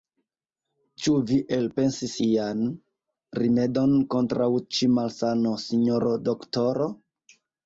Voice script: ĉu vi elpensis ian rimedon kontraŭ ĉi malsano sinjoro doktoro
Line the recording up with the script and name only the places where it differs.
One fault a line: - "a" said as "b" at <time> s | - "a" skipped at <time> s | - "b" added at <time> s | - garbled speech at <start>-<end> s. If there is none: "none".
none